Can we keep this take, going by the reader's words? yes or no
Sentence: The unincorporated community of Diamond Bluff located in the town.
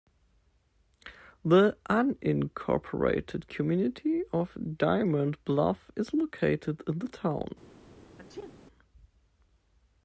no